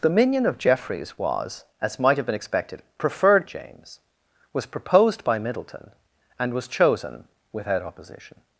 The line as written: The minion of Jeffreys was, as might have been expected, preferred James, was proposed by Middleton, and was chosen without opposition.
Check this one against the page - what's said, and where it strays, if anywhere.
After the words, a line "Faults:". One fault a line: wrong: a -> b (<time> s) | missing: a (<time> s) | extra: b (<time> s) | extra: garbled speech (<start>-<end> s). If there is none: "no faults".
The minion of Jeffreys was, as might have been expected, preferred James, was proposed by Middleton, and was chosen without opposition.
Faults:
no faults